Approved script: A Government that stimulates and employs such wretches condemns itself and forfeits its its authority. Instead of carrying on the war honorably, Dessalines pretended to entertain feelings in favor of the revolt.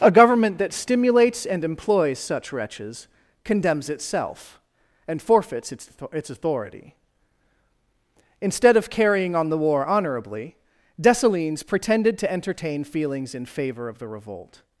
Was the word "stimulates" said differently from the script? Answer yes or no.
no